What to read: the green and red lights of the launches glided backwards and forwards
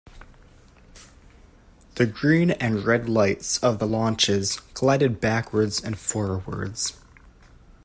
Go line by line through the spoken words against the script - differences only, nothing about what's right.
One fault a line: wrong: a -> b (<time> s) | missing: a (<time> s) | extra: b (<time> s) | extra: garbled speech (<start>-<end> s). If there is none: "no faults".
no faults